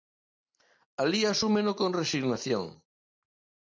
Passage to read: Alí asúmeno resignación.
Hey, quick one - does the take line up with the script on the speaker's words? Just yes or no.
no